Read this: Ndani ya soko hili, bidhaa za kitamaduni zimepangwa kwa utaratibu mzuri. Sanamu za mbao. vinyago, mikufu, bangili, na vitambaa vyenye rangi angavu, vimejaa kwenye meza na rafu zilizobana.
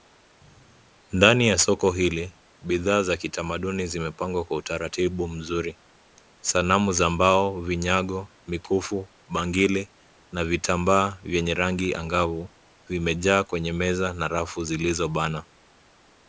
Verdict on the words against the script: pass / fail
pass